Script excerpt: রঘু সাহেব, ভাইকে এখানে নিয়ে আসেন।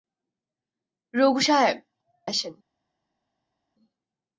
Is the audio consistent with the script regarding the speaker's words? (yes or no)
no